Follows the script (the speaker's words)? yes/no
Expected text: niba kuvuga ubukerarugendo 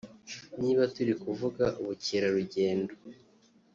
no